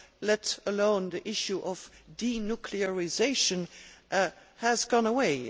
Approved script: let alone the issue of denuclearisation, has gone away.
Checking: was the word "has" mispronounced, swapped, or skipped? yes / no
no